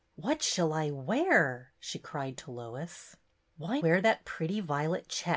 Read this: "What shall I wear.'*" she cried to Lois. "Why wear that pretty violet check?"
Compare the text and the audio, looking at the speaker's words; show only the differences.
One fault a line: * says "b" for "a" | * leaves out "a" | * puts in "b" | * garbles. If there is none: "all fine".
all fine